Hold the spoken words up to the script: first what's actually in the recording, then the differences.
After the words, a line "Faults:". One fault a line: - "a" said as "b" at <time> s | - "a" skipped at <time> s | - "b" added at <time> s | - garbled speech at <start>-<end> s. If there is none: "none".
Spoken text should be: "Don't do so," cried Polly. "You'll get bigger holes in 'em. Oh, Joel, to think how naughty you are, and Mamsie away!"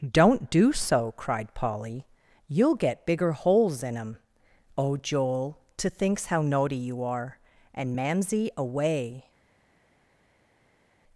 "Don't do so," cried Polly. "You'll get bigger holes in 'em. Oh, Joel, to thinks how naughty you are, and Mamsie away!"
Faults:
- "think" said as "thinks" at 5.9 s